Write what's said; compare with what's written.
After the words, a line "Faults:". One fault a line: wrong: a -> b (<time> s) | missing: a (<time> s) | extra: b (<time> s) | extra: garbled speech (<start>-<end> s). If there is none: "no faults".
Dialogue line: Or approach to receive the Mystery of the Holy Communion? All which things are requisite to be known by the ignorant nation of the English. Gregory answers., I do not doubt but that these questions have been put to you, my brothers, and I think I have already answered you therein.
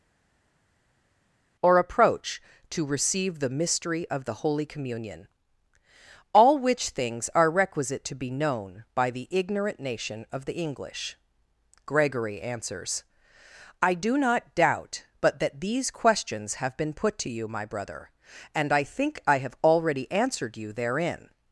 Or approach to receive the Mystery of the Holy Communion? All which things are requisite to be known by the ignorant nation of the English. Gregory answers., I do not doubt but that these questions have been put to you, my brother, and I think I have already answered you therein.
Faults:
wrong: brothers -> brother (17.7 s)